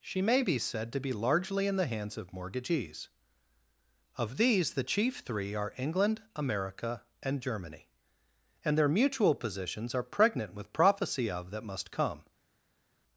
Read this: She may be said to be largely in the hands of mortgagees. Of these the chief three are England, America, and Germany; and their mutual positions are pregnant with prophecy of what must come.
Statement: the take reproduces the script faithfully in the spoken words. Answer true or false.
false